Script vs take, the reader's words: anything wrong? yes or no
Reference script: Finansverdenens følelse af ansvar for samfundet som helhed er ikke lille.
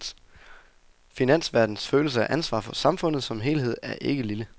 no